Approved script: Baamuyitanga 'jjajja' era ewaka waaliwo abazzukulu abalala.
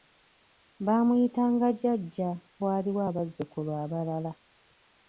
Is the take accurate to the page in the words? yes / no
no